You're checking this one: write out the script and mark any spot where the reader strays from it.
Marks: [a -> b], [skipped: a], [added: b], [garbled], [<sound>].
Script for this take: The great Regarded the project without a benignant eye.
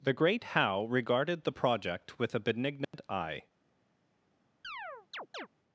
The great [added: Howe] Regarded the project [without -> with] a benignant [dropout] eye. [chirp]